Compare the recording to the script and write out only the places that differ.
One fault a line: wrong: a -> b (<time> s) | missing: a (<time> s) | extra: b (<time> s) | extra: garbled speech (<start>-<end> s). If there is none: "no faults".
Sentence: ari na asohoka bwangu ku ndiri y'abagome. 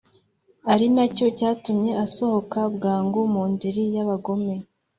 extra: cyo cyatumye (1.1 s)
wrong: ku -> mu (3.3 s)